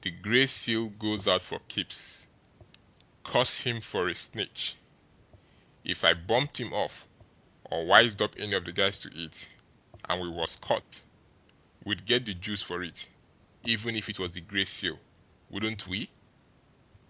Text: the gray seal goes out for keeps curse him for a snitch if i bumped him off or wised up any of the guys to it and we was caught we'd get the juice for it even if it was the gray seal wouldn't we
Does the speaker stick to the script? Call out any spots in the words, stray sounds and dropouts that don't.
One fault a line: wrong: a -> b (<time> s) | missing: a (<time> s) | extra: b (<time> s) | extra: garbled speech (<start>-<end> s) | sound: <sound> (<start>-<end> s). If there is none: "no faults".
sound: dropout (10.8-10.9 s)